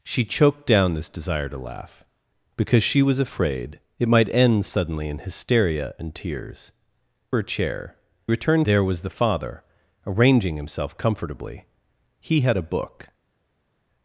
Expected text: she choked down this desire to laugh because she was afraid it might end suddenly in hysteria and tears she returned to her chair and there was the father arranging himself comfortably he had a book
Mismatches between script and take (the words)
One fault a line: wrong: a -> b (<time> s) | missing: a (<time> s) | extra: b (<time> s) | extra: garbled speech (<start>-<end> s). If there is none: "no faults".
missing: she returned to (6.7 s)
wrong: and -> returned (8.3 s)